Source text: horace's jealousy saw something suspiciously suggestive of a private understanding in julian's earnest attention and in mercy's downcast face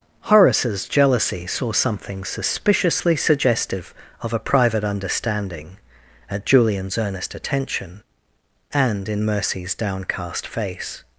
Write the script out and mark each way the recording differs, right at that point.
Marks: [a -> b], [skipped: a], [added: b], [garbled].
horace's jealousy saw something suspiciously suggestive of a private understanding [in -> at] julian's earnest attention and in mercy's downcast face